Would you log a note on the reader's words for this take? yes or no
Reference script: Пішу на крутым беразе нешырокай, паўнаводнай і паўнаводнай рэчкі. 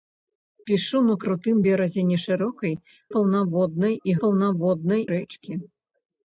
no